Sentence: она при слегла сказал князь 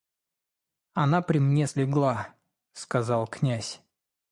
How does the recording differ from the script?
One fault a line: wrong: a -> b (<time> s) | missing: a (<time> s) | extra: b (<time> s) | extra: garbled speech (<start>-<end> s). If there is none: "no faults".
extra: мне (1.4 s)